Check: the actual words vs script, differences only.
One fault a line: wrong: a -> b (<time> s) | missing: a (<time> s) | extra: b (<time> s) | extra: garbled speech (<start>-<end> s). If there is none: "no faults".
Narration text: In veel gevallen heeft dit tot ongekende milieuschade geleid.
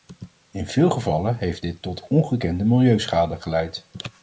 no faults